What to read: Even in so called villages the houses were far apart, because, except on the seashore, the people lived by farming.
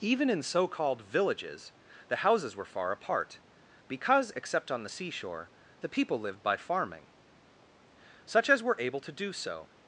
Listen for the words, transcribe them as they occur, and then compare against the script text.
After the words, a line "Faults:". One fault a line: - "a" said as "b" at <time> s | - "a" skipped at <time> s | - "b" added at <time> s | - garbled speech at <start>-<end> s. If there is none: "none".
Even in so called villages the houses were far apart, because, except on the seashore, the people lived by farming. Such as were able to do so
Faults:
- "Such as were able to do so" added at 8.2 s